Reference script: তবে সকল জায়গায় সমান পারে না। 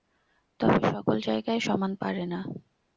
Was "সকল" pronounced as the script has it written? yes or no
yes